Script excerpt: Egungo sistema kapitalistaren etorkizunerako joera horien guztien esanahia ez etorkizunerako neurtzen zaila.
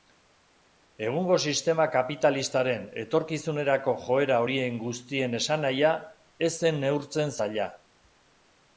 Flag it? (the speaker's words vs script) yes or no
yes